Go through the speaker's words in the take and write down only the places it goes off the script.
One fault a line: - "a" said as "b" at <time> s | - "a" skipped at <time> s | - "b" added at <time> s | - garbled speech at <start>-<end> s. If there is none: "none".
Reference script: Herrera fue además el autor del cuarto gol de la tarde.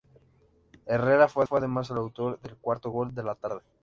- "fue" added at 1.4 s